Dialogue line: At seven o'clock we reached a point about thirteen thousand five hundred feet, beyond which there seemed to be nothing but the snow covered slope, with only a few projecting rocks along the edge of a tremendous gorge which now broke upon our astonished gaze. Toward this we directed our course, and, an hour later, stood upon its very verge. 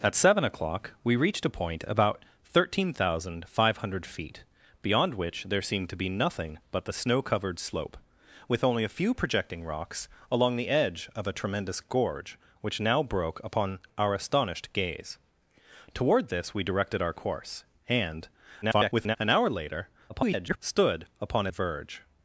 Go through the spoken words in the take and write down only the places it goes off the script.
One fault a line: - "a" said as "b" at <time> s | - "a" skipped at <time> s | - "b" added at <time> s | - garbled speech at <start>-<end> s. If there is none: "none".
- garbled speech at 18.6-19.2 s
- garbled speech at 20.1-20.6 s
- "its very" skipped at 21.5 s